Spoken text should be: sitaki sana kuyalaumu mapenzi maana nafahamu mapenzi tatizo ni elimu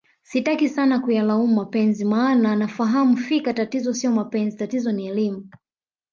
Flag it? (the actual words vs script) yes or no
yes